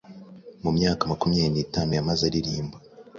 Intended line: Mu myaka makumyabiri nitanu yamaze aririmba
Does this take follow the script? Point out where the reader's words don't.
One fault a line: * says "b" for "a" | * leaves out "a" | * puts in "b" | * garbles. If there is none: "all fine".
all fine